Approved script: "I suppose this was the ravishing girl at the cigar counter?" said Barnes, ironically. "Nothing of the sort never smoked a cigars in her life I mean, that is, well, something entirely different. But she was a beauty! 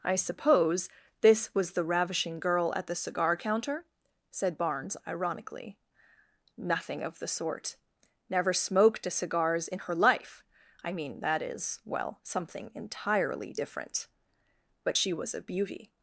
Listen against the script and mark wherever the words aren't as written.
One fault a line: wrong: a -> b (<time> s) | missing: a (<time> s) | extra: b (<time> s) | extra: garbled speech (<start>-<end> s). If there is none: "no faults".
no faults